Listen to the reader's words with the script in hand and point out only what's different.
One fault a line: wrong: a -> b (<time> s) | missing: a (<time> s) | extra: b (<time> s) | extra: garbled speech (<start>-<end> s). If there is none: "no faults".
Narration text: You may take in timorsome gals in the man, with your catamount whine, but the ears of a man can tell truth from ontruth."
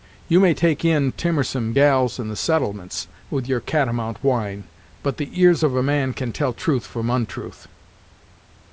wrong: man -> settlements (2.4 s)